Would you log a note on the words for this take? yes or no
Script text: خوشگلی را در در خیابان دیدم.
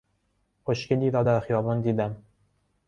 yes